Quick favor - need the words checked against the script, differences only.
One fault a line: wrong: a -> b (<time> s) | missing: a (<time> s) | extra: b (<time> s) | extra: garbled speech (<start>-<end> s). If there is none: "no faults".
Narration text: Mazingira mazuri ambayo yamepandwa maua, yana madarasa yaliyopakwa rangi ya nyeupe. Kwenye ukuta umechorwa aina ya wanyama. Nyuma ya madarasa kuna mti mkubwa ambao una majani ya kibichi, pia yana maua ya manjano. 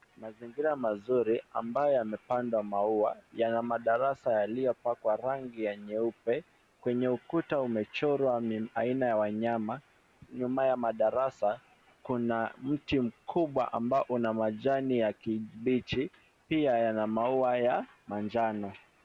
no faults